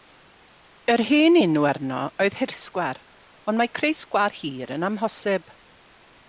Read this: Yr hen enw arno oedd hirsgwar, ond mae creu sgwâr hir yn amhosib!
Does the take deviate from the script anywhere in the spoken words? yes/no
no